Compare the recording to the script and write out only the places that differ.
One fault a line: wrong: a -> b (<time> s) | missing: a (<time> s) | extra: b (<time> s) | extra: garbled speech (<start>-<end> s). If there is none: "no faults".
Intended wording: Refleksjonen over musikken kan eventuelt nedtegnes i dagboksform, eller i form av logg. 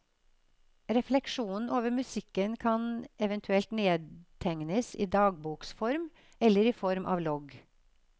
no faults